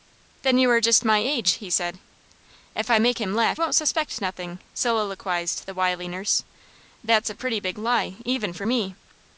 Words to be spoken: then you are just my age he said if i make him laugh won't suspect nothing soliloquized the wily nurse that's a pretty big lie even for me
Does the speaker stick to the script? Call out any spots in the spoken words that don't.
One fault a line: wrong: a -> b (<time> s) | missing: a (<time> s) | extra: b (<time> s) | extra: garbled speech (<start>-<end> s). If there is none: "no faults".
no faults